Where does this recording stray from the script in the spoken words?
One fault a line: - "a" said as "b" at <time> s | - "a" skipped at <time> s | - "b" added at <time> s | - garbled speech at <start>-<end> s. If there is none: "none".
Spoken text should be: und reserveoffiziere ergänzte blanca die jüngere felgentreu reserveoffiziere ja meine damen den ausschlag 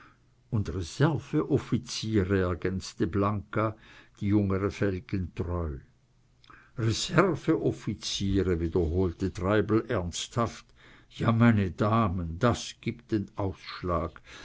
- "wiederholte treibel ernsthaft" added at 8.6 s
- "das gibt" added at 12.4 s